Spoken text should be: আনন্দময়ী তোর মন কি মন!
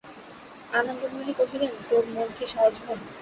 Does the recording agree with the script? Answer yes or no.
no